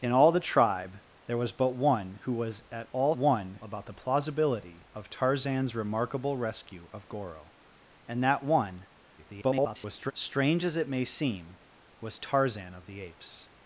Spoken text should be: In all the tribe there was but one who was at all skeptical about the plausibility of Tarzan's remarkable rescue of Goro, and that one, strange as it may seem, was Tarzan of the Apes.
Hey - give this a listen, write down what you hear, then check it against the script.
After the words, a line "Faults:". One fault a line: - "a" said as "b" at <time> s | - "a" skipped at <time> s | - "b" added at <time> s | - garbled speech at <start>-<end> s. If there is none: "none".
In all the tribe there was but one who was at all one about the plausibility of Tarzan's remarkable rescue of Goro, and that one, [garbled] strange as it may seem, was Tarzan of the Apes.
Faults:
- "skeptical" said as "one" at 3.1 s
- garbled speech at 9.2-10.1 s